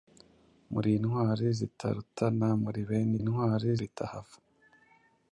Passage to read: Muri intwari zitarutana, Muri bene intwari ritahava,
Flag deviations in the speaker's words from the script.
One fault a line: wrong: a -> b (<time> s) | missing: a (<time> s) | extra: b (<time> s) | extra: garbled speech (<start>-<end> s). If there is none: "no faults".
no faults